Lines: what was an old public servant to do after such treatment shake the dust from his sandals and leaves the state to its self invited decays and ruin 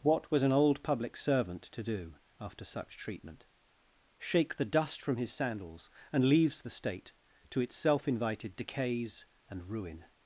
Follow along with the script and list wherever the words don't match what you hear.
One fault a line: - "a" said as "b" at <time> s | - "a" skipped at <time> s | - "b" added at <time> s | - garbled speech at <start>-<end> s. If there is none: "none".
none